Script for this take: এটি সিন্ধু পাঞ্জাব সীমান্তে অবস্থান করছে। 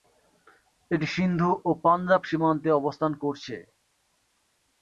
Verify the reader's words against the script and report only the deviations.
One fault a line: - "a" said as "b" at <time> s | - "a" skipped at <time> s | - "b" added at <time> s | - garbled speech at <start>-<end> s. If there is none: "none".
- "ও" added at 1.6 s